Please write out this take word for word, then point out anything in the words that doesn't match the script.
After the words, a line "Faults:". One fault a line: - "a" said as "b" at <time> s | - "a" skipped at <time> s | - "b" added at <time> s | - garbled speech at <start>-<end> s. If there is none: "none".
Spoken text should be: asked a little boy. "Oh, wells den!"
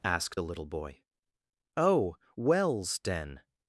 asked a little boy. "Oh, wells den!"
Faults:
none